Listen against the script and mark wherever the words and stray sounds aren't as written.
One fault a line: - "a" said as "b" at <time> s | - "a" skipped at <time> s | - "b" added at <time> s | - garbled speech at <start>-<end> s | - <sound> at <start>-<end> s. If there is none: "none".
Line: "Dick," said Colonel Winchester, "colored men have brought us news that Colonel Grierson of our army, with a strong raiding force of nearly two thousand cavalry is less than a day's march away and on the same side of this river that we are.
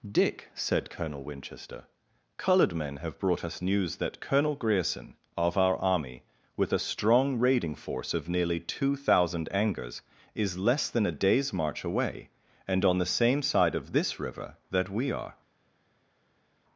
- "cavalry" said as "angers" at 9.5 s